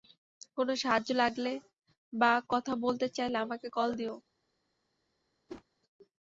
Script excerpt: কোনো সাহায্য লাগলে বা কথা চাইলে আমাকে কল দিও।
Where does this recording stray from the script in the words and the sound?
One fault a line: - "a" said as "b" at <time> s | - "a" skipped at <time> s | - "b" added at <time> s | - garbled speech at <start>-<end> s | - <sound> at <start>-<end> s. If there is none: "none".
- "বলতে" added at 2.8 s
- whoosh at 5.5-5.6 s